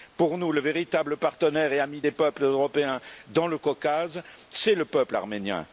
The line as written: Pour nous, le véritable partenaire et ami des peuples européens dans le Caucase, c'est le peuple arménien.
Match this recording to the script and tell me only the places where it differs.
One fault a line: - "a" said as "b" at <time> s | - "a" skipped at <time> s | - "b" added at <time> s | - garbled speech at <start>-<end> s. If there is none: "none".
none